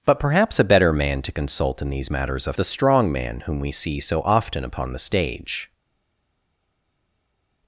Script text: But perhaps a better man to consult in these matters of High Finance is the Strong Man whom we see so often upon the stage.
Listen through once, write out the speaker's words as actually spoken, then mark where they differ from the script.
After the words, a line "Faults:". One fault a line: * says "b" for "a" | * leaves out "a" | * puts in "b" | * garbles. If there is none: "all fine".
But perhaps a better man to consult in these matters of The Strong Man whom we see so often upon the stage.
Faults:
* leaves out "High Finance is"